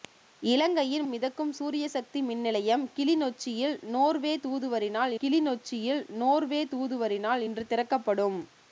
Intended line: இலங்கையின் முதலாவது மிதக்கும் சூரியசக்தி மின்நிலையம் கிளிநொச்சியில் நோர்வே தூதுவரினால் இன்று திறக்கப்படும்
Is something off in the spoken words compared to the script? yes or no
yes